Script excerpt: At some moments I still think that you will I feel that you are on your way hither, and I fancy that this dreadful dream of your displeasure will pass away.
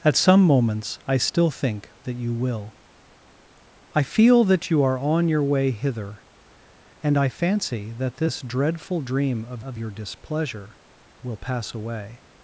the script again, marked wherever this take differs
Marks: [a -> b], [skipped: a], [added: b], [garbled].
At some moments I still think that you will I feel that you are on your way hither, and I fancy that this dreadful dream of [added: of] your displeasure will pass away.